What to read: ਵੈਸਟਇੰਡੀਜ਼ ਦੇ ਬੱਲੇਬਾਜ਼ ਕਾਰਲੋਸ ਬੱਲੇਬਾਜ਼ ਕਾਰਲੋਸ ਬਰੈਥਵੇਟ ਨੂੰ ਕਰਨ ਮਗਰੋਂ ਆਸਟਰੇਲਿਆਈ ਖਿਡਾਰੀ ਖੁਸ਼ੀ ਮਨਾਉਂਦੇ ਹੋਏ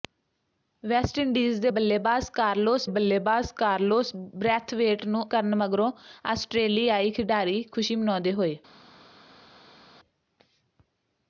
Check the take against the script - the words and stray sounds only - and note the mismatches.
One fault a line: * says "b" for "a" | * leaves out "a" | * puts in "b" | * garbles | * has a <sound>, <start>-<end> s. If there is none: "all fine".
all fine